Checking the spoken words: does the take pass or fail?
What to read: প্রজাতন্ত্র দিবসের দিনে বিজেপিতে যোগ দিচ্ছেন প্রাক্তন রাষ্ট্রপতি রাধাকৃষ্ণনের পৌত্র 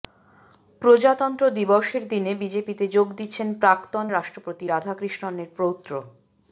pass